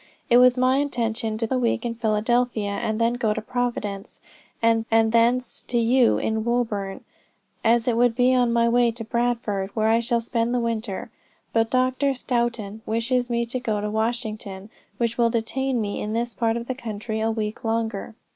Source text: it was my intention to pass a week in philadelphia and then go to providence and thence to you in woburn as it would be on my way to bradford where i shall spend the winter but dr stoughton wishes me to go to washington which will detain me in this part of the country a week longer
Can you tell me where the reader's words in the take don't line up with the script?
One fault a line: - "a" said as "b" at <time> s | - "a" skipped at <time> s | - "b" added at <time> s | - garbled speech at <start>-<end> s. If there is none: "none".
- "pass" skipped at 1.5 s
- "and" added at 4.9 s